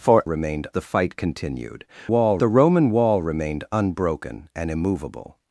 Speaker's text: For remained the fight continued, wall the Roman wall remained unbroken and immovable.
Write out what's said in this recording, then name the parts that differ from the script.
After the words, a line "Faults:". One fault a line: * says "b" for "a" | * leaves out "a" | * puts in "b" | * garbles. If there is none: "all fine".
For remained the fight continued, wall the Roman wall remained unbroken and immovable.
Faults:
all fine